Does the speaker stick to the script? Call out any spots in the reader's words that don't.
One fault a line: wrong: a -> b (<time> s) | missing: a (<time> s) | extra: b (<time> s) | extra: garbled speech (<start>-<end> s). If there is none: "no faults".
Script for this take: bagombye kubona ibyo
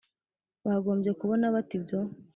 extra: bate (1.6 s)